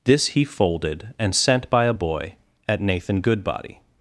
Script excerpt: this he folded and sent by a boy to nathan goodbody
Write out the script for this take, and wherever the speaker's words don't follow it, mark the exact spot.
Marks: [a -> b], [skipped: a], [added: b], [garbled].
this he folded and sent by a boy [to -> at] nathan goodbody